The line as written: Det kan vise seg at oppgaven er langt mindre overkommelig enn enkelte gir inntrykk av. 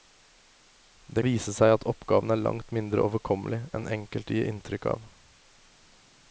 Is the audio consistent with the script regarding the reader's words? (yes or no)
no